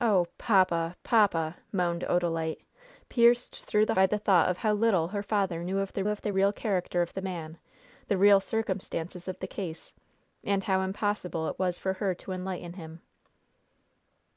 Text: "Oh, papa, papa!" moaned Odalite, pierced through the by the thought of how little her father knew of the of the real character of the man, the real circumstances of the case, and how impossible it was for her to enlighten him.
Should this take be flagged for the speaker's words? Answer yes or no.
no